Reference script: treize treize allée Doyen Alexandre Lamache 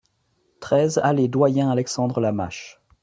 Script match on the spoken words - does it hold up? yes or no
no